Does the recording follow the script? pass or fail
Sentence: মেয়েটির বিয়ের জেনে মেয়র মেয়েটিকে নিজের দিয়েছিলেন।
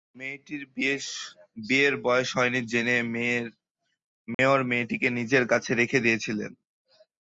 fail